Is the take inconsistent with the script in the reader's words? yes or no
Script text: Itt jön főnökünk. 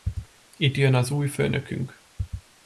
yes